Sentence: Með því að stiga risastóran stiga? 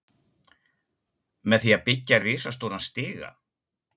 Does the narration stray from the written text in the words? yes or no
yes